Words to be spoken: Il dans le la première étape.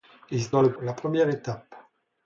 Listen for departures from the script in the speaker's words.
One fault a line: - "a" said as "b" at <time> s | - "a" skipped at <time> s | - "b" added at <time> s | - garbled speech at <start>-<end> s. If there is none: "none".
none